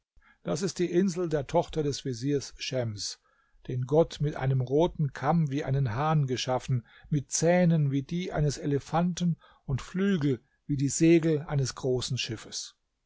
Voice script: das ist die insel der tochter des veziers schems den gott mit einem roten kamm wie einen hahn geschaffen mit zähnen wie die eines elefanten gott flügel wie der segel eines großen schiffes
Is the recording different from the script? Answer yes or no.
yes